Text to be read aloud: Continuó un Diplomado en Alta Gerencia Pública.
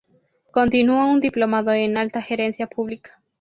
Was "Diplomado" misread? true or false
false